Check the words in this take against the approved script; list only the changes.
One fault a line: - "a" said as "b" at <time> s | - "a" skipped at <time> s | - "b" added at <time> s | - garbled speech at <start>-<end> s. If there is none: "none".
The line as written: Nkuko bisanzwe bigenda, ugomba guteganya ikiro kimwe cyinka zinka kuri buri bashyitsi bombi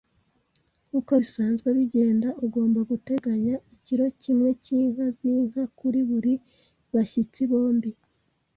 none